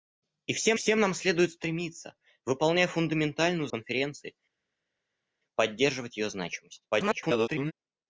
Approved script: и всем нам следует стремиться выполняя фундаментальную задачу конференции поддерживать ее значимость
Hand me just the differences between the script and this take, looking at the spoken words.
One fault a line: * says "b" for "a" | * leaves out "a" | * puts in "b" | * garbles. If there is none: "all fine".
* puts in "всем"
* leaves out "задачу"
* garbles